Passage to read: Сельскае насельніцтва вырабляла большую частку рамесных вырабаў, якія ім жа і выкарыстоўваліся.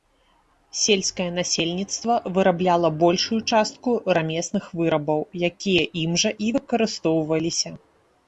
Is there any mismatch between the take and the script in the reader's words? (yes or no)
no